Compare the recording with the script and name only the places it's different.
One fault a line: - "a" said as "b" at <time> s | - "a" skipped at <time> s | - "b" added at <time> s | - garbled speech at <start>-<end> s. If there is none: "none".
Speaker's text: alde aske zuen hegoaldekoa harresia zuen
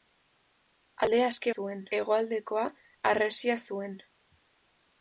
none